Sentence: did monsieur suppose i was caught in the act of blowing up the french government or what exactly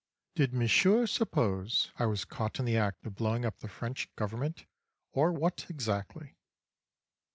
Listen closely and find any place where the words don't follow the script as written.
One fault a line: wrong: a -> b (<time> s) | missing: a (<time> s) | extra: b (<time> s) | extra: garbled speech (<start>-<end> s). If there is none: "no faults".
no faults